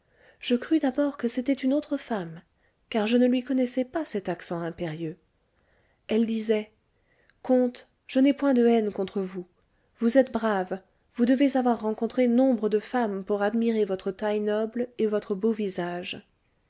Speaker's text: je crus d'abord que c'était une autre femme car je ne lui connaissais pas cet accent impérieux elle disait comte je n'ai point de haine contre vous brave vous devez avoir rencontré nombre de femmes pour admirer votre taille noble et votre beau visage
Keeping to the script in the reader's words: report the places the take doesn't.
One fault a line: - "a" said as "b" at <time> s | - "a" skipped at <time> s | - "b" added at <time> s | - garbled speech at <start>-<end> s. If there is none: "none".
- "vous êtes" added at 10.0 s